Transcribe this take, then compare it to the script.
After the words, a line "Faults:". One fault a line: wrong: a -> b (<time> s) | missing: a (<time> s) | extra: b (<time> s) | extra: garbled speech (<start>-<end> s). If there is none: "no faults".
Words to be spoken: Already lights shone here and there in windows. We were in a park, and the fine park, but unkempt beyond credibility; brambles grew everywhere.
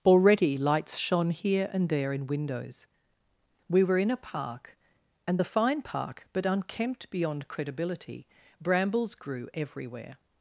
Already lights shone here and there in windows. We were in a park, and the fine park, but unkempt beyond credibility; brambles grew everywhere.
Faults:
no faults